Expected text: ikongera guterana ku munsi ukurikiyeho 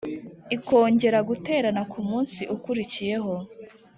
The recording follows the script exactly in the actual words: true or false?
true